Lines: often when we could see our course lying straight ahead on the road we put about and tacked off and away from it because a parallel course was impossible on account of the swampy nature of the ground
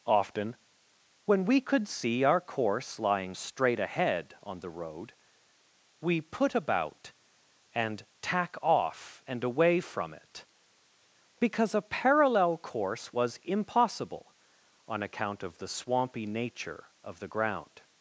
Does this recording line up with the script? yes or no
no